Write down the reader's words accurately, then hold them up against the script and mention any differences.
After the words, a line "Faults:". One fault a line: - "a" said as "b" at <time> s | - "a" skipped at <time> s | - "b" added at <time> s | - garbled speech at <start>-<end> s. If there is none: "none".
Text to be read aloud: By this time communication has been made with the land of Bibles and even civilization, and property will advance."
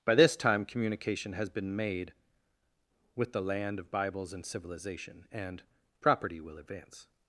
By this time communication has been made with the land of Bibles and civilization, and property will advance."
Faults:
- "even" skipped at 4.5 s